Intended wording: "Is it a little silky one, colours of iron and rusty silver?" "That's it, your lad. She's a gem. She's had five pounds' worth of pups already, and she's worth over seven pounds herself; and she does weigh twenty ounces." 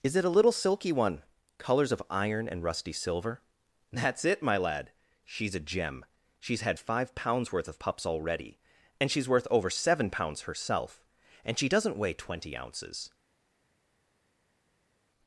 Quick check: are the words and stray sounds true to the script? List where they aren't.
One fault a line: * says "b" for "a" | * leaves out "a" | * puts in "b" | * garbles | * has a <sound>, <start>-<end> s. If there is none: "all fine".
* says "my" for "your"
* says "doesn't" for "does"